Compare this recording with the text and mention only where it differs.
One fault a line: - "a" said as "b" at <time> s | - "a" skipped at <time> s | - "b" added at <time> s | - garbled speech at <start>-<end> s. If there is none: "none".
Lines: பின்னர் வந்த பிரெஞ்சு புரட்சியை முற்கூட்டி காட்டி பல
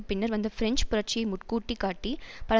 none